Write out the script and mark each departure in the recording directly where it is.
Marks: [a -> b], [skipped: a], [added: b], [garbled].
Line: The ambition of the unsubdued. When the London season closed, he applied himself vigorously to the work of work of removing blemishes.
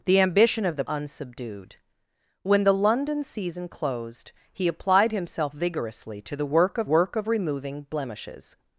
The ambition of the unsubdued. When the London season closed, he applied himself vigorously to the work of work of removing blemishes.